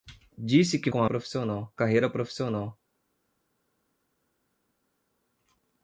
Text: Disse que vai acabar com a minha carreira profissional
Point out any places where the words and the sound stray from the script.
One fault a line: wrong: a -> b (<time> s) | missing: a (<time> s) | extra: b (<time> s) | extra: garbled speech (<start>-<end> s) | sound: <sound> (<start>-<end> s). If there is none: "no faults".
missing: vai acabar (0.9 s)
wrong: minha -> profissional (1.0 s)